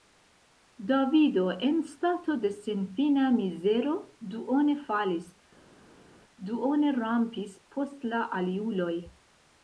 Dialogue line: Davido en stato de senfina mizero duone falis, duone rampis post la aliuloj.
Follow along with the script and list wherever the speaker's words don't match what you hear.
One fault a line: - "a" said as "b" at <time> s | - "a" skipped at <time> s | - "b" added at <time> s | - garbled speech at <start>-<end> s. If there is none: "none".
none